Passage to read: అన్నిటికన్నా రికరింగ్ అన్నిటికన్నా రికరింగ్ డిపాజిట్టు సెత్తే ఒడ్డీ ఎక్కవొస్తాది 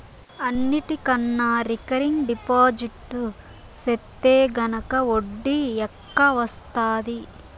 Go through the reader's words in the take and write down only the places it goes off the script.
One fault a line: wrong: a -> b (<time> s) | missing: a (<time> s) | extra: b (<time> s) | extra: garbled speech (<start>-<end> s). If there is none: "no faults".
missing: అన్నిటికన్నా రికరింగ్ (2.2 s)
extra: గనక (4.6 s)